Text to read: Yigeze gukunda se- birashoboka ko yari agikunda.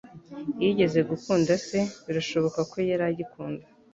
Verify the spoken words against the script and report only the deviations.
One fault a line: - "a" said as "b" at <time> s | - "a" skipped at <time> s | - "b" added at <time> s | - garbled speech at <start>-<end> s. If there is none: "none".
none